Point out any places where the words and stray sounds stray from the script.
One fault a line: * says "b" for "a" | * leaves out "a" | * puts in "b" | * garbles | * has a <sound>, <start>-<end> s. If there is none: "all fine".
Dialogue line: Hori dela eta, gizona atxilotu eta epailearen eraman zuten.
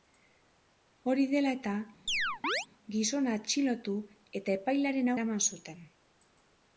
* has a chirp, 2.1-2.7 s